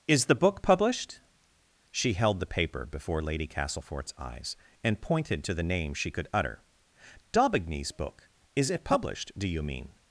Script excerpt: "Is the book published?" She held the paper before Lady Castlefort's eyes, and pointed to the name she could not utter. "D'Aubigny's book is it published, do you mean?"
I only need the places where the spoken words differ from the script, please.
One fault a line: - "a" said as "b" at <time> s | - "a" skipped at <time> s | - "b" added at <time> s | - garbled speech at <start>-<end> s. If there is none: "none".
- "not" skipped at 6.3 s